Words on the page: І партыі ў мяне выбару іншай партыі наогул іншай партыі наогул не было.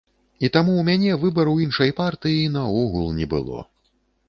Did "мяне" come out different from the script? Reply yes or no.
no